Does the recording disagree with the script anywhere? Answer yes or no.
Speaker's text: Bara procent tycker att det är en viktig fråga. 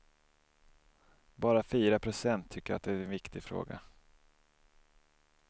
yes